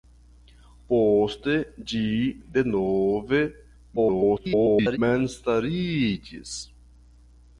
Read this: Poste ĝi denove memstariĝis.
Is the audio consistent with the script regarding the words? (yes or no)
no